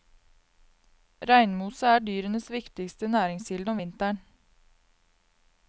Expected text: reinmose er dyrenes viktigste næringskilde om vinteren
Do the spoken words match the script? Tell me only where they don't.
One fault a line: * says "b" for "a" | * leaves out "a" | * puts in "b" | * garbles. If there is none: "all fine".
all fine